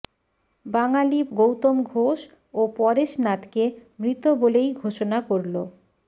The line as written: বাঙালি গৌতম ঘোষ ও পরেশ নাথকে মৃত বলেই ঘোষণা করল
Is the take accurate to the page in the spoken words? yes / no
yes